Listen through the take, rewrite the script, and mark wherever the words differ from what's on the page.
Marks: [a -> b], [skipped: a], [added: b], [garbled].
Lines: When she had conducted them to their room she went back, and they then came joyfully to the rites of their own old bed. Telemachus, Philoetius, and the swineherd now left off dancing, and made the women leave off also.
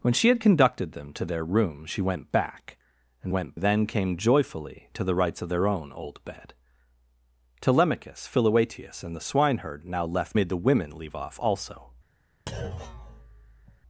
When she had conducted them to their room she went back, and [they -> went] then came joyfully to the rites of their own old bed. Telemachus, Philoetius, and the swineherd now left [skipped: off dancing, and] made the women leave off also.